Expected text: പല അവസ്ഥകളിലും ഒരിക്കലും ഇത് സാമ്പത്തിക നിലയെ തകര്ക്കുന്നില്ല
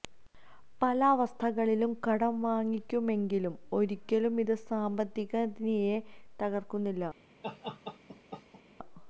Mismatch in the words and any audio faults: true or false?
true